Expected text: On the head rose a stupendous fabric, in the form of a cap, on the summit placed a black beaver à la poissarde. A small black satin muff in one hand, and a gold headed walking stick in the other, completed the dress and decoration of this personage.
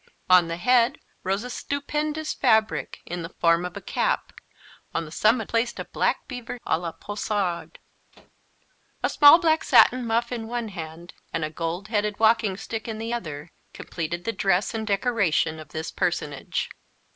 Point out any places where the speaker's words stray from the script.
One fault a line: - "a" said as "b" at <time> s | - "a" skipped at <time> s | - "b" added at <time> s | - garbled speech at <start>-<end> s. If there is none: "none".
none